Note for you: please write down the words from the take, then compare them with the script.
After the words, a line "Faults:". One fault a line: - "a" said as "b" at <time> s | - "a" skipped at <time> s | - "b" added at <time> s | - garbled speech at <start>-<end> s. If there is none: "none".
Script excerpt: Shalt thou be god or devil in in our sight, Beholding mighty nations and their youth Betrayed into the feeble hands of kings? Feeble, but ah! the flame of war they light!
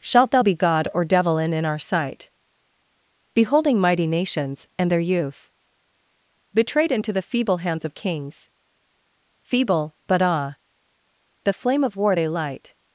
Shalt thou be god or devil in in our sight, Beholding mighty nations and their youth Betrayed into the feeble hands of kings? Feeble, but ah! the flame of war they light!
Faults:
none